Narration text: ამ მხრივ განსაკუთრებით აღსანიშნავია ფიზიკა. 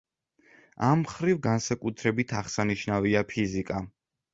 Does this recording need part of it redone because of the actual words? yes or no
no